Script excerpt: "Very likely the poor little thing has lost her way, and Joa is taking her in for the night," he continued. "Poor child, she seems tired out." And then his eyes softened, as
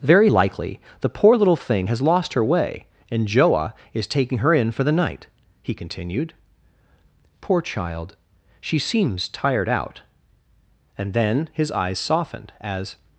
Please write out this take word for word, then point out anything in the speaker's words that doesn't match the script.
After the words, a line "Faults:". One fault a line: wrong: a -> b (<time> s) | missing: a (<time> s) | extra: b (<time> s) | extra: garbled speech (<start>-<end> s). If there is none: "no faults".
"Very likely the poor little thing has lost her way, and Joa is taking her in for the night," he continued. "Poor child, she seems tired out." And then his eyes softened, as
Faults:
no faults